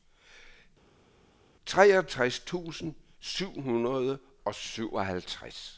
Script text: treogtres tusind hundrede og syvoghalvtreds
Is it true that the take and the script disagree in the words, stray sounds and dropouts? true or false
true